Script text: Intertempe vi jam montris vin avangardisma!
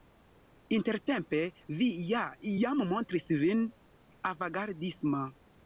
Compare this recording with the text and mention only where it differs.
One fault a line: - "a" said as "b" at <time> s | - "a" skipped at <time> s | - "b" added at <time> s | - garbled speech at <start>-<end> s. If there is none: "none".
- "ja" added at 2.1 s